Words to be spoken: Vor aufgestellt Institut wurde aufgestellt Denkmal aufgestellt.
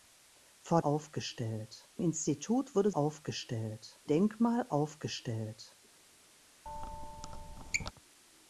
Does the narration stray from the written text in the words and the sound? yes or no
yes